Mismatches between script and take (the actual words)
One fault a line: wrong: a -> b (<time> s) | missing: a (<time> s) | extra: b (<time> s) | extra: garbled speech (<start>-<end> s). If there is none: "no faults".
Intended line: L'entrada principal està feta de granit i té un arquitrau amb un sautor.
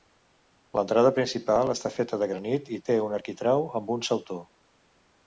no faults